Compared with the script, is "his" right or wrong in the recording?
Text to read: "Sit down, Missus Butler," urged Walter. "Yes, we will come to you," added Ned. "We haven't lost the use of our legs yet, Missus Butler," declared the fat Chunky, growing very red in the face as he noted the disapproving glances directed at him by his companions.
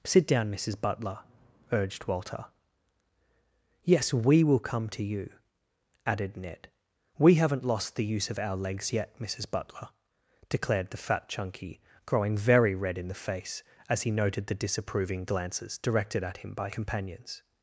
wrong